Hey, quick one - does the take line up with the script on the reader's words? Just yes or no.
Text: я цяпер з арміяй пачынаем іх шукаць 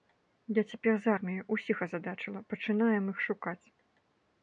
no